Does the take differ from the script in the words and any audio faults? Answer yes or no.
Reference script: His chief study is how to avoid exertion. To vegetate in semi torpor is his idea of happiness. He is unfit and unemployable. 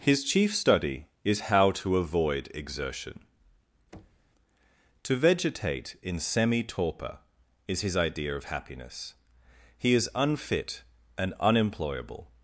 yes